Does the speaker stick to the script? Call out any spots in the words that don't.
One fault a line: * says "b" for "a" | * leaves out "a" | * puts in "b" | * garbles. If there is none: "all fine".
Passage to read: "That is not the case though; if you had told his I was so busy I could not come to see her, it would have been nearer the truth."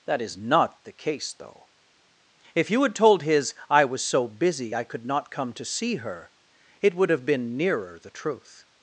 all fine